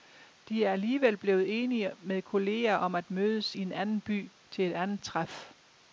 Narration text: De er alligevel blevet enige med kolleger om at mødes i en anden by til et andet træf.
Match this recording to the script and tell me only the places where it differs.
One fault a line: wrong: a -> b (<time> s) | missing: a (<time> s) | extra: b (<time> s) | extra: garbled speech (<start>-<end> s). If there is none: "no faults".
no faults